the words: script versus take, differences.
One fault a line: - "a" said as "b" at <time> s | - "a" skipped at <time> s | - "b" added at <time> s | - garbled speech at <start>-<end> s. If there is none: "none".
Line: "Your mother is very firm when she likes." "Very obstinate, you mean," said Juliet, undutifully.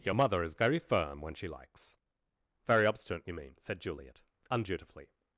none